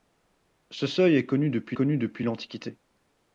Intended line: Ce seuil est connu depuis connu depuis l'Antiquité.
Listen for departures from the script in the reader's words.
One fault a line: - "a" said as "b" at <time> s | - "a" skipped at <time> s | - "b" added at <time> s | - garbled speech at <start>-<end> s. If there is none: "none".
none